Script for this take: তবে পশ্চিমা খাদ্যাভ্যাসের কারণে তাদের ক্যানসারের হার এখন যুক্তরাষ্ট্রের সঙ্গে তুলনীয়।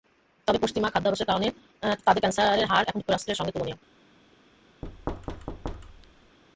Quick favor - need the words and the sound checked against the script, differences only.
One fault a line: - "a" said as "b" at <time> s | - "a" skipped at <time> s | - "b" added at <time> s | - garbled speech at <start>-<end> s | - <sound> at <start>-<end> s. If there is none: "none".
- thud at 4.8-6.4 s